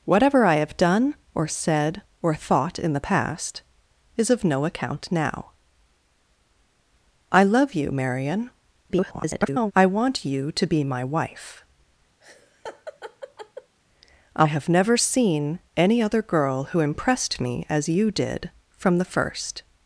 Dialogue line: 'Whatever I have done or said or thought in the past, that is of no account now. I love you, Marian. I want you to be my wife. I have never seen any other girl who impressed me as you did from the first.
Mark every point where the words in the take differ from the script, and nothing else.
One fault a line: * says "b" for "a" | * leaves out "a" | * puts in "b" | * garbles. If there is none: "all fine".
* leaves out "that"
* garbles